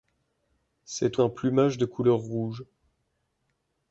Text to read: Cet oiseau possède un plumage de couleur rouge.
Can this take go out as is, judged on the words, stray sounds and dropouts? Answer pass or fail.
fail